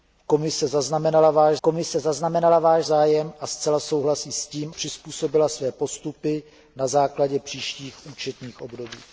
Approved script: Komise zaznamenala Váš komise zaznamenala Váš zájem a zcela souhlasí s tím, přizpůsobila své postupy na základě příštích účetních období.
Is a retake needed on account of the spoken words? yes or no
no